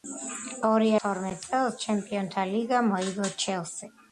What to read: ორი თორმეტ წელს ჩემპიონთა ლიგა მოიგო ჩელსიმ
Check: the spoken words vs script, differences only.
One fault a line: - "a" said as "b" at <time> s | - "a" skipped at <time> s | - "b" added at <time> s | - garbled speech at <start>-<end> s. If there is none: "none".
none